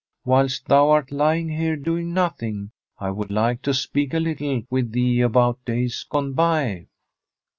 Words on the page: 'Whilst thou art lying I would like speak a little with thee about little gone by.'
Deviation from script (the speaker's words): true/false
true